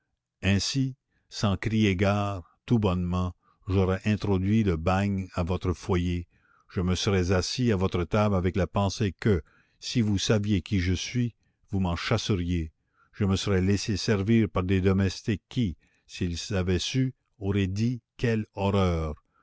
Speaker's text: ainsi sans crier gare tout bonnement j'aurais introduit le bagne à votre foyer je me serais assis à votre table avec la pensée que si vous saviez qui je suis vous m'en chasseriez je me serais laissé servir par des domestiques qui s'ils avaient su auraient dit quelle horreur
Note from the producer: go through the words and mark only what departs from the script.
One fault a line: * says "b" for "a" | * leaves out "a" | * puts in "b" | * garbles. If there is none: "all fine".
all fine